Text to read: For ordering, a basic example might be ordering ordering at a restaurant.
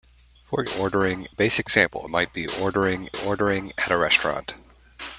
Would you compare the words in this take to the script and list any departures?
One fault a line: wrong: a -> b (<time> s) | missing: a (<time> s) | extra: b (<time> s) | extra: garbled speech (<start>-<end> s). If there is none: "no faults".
no faults